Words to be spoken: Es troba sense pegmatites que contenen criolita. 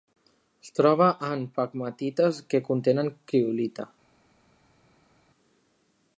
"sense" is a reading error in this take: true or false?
true